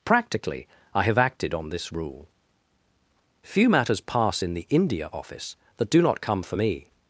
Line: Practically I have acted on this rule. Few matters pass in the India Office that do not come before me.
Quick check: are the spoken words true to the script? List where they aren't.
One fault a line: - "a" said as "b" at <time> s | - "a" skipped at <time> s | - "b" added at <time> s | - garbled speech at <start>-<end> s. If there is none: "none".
- "before" said as "for" at 6.4 s